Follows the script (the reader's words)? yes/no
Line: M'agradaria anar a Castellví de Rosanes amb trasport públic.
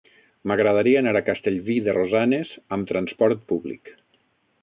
yes